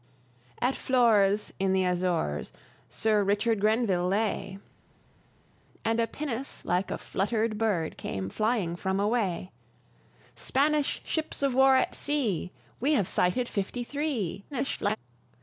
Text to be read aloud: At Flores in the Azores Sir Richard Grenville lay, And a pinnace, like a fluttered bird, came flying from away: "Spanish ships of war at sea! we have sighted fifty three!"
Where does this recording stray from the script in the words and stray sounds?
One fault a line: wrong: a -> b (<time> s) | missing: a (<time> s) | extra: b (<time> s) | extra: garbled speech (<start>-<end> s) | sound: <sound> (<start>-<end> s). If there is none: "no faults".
extra: garbled speech (14.5-15.0 s)